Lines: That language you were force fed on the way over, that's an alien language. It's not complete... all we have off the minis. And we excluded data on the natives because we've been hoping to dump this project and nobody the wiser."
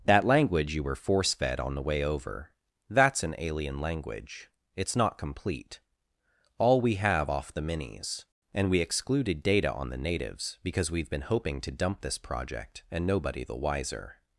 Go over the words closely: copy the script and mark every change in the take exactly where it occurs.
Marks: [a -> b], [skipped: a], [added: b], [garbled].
That language you were force fed on the way over, that's an alien language. It's not complete... all we have off the minis. And we excluded data on the natives because we've been hoping to dump this project and nobody the wiser."